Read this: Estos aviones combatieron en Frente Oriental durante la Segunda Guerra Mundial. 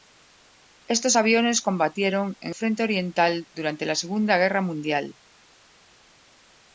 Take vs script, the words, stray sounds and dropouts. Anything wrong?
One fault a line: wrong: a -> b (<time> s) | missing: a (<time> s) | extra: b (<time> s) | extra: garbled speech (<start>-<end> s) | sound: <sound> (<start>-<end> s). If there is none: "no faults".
no faults